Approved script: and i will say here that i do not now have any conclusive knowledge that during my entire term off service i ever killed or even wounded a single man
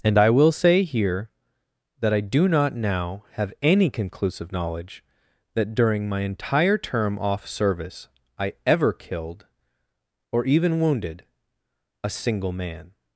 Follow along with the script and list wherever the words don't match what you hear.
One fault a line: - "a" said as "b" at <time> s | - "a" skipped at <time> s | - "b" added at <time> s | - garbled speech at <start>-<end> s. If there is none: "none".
none